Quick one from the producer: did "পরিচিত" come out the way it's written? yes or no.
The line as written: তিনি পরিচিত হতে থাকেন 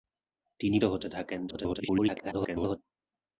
no